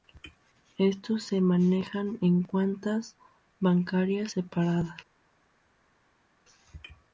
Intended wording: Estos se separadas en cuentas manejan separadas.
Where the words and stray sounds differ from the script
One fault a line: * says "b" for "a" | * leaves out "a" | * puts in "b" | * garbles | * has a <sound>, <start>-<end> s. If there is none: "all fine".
* says "manejan" for "separadas"
* says "bancarias" for "manejan"